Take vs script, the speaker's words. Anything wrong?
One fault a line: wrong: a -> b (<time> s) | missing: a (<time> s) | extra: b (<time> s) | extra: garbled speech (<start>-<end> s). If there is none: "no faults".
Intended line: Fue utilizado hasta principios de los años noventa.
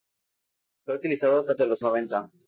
missing: principios (1.6 s)
missing: años (1.8 s)